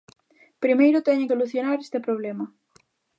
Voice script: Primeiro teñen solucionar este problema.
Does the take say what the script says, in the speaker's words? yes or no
yes